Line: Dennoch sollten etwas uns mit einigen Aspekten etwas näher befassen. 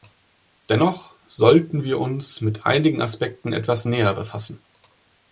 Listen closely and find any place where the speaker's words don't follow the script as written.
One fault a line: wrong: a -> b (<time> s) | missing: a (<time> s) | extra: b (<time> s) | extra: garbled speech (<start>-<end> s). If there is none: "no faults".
wrong: etwas -> wir (1.8 s)